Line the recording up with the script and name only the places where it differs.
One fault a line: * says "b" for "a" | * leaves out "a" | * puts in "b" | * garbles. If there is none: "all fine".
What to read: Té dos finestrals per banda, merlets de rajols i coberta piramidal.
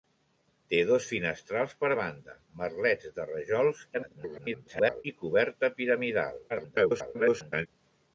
* garbles
* garbles